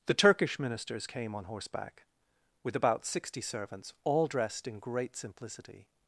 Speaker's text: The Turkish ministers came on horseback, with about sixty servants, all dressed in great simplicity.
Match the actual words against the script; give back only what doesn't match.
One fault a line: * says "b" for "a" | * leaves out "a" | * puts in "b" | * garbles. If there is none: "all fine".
all fine